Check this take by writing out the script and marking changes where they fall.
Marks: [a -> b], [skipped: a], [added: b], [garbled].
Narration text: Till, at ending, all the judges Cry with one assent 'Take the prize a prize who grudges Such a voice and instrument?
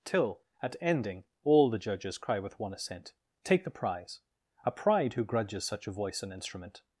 Till, at ending, all the judges Cry with one assent 'Take the prize a [prize -> pride] who grudges Such a voice and instrument?